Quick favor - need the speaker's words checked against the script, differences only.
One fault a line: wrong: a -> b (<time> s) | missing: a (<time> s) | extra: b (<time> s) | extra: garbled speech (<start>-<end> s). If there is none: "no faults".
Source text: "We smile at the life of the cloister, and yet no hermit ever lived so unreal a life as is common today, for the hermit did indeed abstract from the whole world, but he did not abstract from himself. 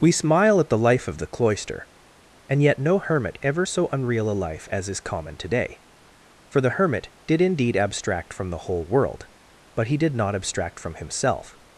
missing: lived (3.7 s)